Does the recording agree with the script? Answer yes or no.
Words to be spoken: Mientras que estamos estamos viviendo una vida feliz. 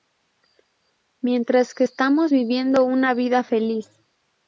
no